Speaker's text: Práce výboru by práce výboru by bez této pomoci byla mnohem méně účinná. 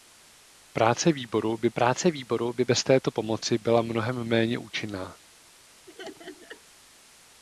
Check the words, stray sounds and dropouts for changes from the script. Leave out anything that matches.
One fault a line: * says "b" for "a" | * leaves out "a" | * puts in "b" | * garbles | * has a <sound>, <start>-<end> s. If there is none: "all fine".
* has a laugh, 5.9-6.6 s